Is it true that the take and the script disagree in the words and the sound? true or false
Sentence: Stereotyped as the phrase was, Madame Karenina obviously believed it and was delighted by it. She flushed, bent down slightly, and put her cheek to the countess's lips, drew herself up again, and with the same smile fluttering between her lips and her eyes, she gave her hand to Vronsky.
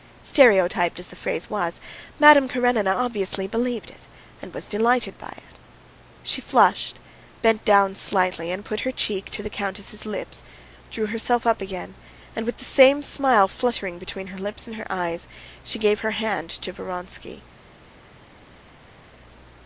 false